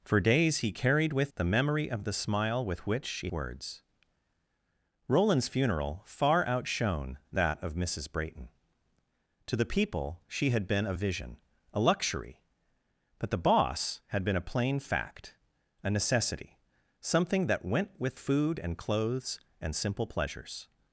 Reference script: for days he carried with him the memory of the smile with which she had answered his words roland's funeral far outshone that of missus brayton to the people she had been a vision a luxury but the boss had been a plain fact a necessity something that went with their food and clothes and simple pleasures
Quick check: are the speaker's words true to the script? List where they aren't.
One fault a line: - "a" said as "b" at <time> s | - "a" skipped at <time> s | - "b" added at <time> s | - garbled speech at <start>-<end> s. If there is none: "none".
- "him" skipped at 1.3 s
- "had answered his" skipped at 3.3 s
- "their" skipped at 18.2 s